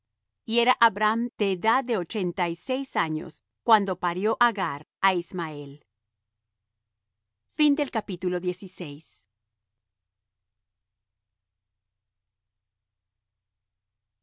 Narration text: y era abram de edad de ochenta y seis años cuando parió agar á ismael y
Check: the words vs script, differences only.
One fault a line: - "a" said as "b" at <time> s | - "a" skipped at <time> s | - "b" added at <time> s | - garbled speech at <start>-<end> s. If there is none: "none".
none